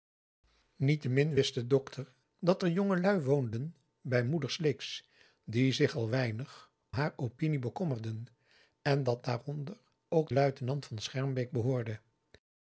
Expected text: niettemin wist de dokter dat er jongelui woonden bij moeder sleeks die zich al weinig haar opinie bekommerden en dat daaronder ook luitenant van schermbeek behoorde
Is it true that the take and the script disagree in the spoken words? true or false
false